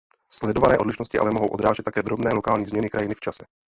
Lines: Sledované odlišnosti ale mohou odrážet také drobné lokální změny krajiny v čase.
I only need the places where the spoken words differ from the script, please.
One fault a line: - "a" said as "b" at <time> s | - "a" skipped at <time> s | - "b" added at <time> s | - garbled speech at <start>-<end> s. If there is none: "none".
none